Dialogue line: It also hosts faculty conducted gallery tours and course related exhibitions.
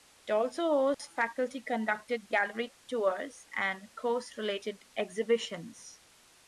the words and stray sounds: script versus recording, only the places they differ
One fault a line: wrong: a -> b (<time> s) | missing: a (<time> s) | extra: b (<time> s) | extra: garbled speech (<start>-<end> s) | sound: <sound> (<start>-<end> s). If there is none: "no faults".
sound: dropout (0.9-1.0 s)